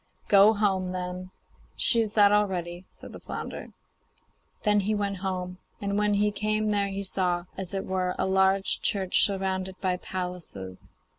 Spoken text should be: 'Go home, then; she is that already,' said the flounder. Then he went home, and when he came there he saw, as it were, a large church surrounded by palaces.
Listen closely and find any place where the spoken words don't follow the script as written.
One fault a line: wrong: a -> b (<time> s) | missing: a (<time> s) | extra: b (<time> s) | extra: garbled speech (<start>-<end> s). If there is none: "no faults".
no faults